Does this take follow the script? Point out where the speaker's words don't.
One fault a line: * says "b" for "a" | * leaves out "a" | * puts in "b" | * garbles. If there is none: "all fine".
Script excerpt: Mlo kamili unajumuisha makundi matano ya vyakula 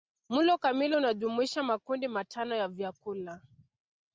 all fine